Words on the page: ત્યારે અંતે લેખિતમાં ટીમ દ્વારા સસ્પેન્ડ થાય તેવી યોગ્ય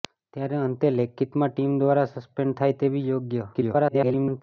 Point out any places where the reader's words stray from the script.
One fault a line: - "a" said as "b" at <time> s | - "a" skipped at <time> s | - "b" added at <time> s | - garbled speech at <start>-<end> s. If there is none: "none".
- garbled speech at 3.5-4.4 s